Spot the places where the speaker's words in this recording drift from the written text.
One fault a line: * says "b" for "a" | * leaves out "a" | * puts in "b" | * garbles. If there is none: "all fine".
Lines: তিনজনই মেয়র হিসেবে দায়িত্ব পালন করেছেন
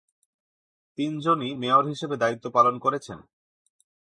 all fine